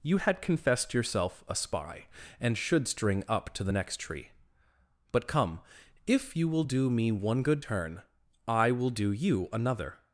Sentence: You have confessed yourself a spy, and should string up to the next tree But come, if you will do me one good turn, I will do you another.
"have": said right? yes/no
no